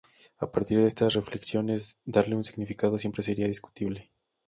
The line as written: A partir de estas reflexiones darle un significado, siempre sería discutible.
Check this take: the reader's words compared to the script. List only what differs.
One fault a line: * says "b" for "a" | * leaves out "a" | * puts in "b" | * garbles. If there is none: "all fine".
all fine